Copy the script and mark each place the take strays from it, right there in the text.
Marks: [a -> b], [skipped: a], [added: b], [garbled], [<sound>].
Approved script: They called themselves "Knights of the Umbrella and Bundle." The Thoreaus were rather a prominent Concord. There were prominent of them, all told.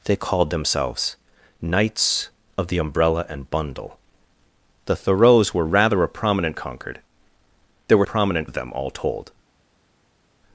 They called themselves "Knights of the Umbrella and Bundle." The Thoreaus were rather a prominent Concord. There were prominent of them, all told.